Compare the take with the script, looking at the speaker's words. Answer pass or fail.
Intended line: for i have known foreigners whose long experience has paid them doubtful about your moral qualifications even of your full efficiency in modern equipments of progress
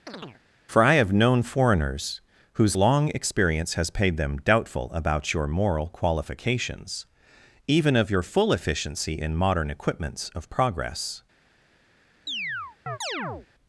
pass